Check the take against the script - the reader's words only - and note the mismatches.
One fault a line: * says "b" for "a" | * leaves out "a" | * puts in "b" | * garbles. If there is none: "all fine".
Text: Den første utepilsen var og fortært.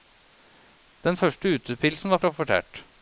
all fine